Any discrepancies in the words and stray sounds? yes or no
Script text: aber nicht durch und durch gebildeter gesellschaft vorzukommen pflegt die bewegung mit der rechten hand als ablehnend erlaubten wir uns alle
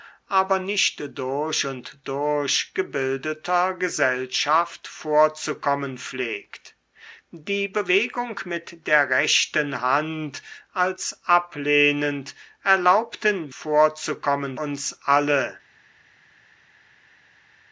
yes